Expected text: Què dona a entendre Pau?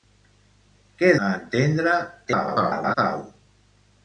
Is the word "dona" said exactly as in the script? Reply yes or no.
no